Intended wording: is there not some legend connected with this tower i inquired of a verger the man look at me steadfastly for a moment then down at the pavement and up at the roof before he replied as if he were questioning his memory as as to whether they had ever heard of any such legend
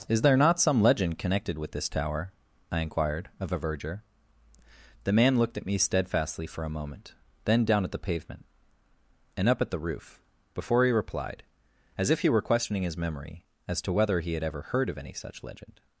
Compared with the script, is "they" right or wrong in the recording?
wrong